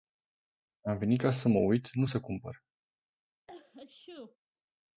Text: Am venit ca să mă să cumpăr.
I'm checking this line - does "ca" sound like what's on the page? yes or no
yes